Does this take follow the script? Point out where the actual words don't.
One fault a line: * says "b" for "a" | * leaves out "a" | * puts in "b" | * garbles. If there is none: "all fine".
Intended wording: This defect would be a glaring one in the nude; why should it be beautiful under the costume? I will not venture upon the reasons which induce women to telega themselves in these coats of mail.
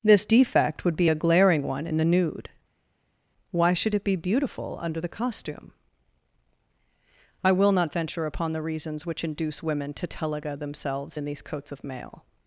all fine